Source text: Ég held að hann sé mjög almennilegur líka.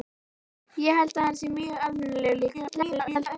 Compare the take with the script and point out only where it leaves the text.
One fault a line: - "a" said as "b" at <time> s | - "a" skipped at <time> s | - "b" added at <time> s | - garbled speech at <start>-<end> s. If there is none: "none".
- garbled speech at 2.5-3.4 s